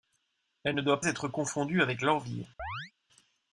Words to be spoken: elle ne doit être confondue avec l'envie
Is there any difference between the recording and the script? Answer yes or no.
no